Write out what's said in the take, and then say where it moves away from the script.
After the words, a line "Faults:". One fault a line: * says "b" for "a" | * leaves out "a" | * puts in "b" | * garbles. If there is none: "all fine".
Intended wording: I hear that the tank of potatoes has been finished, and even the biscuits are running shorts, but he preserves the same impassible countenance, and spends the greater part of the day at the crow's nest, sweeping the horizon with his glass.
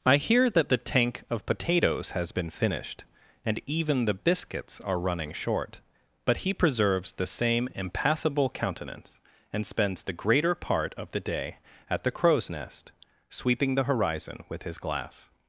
I hear that the tank of potatoes has been finished, and even the biscuits are running short, but he preserves the same impassible countenance, and spends the greater part of the day at the crow's nest, sweeping the horizon with his glass.
Faults:
* says "short" for "shorts"